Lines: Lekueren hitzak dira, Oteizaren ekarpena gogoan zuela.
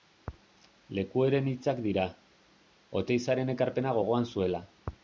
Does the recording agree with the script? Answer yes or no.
yes